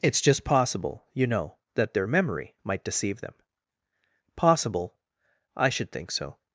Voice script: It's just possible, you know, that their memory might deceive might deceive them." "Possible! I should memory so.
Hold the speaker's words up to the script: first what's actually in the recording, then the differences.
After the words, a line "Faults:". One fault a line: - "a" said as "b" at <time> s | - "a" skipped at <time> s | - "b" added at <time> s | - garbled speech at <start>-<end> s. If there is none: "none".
It's just possible, you know, that their memory might deceive them." "Possible! I should think so.
Faults:
- "might deceive" skipped at 3.2 s
- "memory" said as "think" at 5.9 s